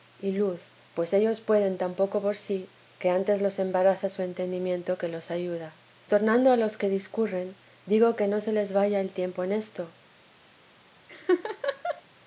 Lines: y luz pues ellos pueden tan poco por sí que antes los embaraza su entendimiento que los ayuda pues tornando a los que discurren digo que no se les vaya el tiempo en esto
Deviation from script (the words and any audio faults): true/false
true